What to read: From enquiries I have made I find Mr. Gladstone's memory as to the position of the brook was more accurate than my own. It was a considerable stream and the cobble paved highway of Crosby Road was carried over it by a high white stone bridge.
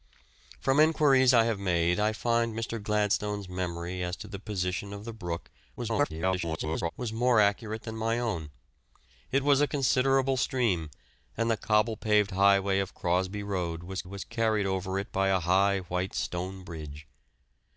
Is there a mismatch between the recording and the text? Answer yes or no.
yes